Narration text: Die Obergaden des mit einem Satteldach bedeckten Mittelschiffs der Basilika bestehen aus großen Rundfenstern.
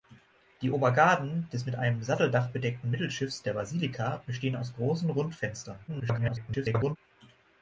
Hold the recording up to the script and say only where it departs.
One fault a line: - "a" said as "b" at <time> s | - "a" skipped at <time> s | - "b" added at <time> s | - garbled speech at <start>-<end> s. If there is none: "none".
- garbled speech at 5.9-7.0 s